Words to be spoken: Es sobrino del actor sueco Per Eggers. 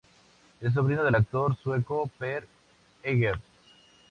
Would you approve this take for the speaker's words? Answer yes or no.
yes